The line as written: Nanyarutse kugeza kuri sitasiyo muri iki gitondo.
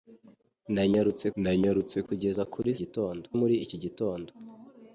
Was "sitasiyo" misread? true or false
true